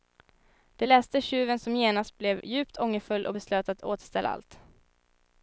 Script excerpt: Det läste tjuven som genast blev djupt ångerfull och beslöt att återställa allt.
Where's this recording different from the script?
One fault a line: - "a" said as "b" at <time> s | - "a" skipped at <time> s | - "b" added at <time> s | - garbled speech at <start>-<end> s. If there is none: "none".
none